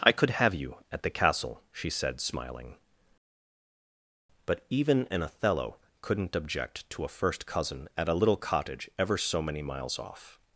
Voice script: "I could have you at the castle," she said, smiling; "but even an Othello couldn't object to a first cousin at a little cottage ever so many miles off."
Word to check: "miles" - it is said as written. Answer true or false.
true